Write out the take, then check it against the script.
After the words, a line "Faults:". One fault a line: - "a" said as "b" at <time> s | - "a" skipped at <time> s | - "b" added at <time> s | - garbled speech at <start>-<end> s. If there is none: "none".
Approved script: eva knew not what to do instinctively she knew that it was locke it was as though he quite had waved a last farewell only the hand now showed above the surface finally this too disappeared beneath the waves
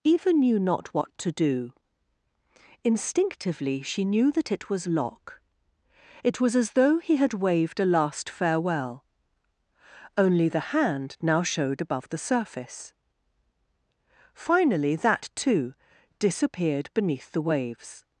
eva knew not what to do instinctively she knew that it was locke it was as though he had waved a last farewell only the hand now showed above the surface finally that too disappeared beneath the waves
Faults:
- "quite" skipped at 7.2 s
- "this" said as "that" at 14.9 s